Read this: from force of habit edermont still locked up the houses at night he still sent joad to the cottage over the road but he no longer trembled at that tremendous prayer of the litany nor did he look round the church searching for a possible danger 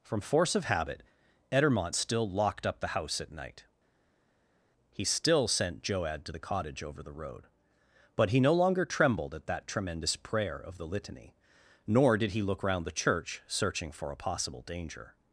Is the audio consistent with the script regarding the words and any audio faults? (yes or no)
no